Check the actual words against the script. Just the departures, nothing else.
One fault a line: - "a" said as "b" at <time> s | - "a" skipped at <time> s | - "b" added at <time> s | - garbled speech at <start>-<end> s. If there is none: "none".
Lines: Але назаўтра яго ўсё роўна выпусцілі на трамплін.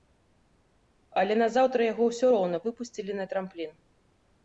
none